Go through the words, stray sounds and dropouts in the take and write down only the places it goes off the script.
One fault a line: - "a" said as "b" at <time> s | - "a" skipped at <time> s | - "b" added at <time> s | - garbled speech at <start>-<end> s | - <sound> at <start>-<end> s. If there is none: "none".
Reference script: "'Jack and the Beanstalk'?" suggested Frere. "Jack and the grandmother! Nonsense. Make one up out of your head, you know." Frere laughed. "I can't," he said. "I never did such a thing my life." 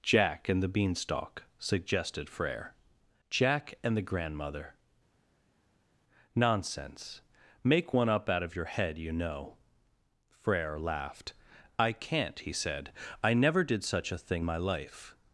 none